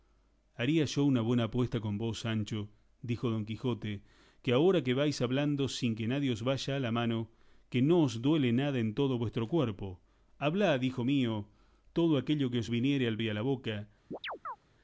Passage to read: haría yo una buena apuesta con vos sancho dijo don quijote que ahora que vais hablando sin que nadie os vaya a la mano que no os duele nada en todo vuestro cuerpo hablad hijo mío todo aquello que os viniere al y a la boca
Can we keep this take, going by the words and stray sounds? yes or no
no